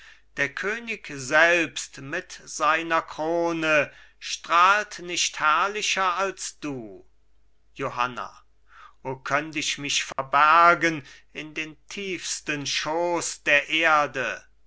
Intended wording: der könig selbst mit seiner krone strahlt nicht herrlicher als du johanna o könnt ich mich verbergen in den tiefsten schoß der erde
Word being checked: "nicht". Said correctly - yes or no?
yes